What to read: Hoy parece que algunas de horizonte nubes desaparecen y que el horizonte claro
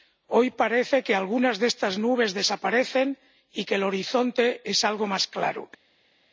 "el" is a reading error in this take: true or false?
false